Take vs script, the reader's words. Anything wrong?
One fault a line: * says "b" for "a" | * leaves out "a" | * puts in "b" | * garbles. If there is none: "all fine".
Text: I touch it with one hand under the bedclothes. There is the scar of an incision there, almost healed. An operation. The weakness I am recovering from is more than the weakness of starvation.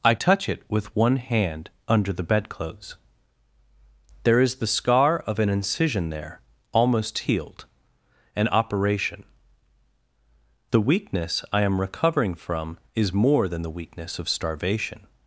all fine